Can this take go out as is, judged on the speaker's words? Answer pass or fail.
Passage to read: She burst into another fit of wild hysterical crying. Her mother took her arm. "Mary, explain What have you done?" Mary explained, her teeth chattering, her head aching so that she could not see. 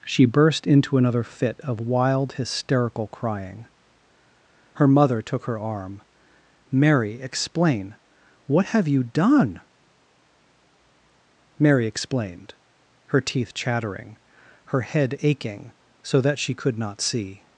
pass